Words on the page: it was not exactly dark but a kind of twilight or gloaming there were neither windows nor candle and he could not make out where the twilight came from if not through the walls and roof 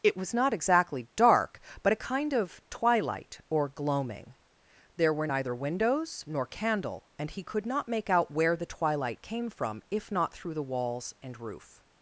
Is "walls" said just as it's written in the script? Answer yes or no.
yes